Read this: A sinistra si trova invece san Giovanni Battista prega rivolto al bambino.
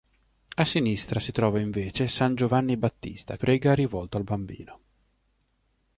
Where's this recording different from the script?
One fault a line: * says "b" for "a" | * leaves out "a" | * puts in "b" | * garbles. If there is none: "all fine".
all fine